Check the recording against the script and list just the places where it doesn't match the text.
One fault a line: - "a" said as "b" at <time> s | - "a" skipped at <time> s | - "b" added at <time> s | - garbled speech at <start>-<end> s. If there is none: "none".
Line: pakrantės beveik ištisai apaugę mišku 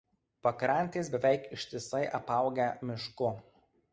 none